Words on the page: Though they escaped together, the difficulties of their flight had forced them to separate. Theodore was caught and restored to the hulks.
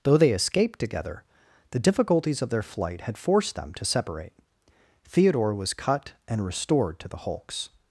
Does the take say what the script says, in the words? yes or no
no